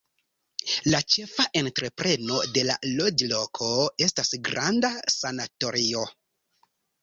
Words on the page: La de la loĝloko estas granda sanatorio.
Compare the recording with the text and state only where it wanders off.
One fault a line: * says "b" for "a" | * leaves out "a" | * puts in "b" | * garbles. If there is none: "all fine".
* puts in "ĉefa entrepreno"